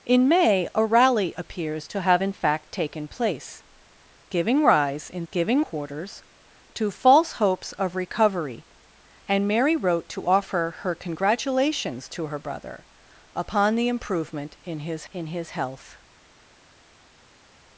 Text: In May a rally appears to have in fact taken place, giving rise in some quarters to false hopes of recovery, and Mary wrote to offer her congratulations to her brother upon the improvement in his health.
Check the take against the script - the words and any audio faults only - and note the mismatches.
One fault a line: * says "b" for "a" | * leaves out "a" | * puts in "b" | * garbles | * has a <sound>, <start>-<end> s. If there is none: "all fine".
* says "giving" for "some"
* puts in "in his"